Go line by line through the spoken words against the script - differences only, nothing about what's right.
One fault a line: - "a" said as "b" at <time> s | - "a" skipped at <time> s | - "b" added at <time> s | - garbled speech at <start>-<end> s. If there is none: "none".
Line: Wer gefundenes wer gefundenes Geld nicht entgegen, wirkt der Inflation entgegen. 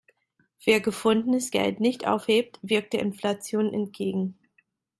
- "wer gefundenes" skipped at 1.5 s
- "entgegen" said as "aufhebt" at 2.1 s